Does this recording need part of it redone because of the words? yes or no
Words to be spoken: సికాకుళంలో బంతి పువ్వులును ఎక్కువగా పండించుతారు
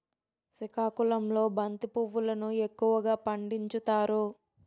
no